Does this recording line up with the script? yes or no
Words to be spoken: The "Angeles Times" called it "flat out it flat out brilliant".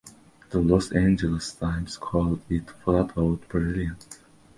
no